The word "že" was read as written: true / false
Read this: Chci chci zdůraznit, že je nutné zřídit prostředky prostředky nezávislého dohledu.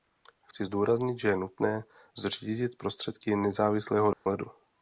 true